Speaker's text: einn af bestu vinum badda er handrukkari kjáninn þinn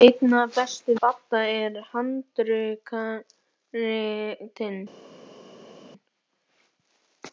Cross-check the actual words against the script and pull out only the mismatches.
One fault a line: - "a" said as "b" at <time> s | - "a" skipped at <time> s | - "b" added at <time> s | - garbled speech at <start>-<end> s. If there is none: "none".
- "vinum" skipped at 0.9 s
- "kjáninn" skipped at 3.2 s